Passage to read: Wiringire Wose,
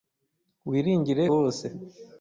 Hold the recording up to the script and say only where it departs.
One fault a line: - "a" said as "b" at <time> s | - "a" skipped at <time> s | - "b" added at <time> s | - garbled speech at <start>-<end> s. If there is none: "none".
none